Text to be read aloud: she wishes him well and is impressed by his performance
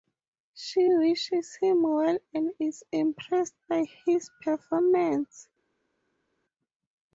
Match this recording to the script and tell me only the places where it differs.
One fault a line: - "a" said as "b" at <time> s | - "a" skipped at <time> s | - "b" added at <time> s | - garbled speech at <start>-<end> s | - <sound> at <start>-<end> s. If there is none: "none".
none